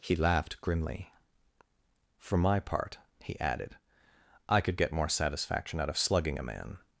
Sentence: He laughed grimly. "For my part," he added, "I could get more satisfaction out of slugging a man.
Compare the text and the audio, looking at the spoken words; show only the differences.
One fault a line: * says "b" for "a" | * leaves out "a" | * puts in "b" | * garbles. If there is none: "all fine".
all fine